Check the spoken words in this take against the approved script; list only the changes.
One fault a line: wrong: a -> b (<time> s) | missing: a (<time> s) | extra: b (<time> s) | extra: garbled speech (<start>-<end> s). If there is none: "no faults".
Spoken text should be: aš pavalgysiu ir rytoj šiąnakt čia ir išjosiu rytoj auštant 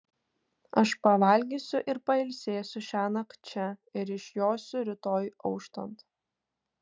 wrong: rytoj -> pailsėsiu (2.1 s)